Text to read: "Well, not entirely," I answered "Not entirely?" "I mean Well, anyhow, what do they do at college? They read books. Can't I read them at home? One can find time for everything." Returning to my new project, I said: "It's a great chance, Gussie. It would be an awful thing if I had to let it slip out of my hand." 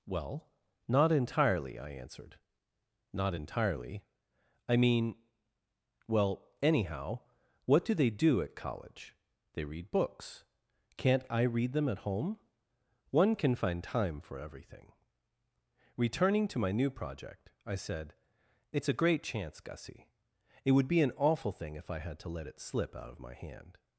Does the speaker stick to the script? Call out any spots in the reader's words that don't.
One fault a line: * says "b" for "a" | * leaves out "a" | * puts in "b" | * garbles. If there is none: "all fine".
all fine